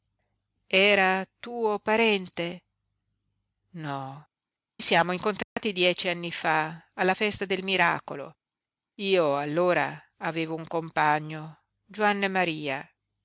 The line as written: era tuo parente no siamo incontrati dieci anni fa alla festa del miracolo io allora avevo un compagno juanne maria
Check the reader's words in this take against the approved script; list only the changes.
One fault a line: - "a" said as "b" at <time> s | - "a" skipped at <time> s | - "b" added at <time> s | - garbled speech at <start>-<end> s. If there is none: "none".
none